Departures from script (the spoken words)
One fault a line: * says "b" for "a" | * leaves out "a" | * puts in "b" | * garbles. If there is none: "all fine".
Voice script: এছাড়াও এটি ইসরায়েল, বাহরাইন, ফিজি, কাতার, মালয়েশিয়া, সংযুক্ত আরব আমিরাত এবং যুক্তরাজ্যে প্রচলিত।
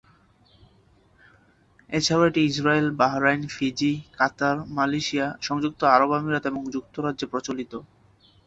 all fine